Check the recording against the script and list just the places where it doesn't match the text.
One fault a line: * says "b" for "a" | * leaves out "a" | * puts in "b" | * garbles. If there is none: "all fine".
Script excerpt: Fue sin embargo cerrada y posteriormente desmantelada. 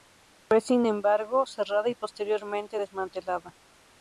all fine